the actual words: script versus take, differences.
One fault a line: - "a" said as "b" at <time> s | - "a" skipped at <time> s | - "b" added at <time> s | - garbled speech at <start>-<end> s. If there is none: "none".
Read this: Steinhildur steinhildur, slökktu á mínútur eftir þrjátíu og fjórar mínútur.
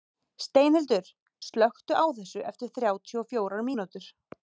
- "steinhildur" skipped at 1.1 s
- "mínútur" said as "þessu" at 2.2 s